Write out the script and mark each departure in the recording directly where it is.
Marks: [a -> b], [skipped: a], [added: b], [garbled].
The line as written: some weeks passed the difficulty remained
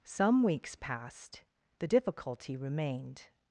some weeks passed the difficulty remained